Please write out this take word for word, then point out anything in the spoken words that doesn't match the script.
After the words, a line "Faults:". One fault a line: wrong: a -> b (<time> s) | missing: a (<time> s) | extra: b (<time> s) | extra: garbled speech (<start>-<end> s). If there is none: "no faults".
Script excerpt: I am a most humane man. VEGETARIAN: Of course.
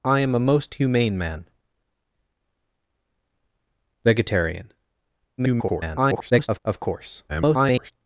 I am a most humane man. VEGETARIAN: [garbled] Of course. [garbled]
Faults:
extra: garbled speech (5.4-6.6 s)
extra: garbled speech (7.3-7.9 s)